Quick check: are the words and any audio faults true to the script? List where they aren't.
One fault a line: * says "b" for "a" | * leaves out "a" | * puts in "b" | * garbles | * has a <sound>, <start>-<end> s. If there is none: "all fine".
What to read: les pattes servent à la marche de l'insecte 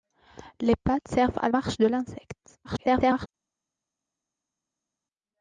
* leaves out "la"
* garbles